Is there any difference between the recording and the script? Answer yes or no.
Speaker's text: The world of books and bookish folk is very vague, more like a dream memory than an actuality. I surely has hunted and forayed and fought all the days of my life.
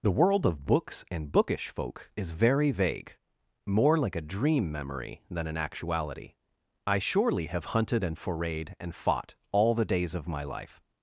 yes